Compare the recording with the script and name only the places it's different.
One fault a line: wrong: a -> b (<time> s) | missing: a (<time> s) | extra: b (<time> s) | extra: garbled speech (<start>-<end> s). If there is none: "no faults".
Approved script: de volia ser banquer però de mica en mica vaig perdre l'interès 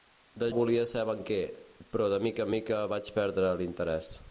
no faults